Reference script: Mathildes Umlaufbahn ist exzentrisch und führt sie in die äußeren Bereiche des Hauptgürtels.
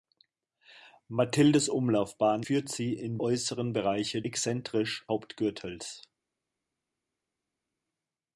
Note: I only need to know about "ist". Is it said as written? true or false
false